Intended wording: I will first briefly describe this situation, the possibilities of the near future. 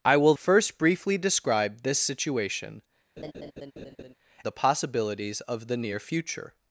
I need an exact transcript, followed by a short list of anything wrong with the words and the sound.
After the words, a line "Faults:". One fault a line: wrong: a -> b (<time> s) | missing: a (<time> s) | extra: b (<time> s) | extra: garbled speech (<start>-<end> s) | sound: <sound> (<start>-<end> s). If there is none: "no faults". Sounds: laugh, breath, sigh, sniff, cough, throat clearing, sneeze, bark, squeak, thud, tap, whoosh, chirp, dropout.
I will first briefly describe this situation, the possibilities of the near future.
Faults:
sound: laugh (3.2-4.1 s)